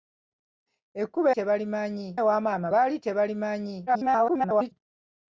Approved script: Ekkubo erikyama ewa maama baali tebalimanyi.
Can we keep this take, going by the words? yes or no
no